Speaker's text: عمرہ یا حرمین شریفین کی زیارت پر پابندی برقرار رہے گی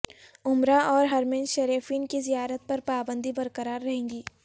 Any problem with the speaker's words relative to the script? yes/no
yes